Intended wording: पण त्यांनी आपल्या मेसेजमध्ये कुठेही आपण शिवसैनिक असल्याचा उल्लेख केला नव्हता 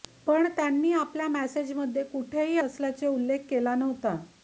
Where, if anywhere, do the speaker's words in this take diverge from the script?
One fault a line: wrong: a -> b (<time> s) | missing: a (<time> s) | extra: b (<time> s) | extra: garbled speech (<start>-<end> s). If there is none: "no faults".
missing: आपण शिवसैनिक (2.6 s)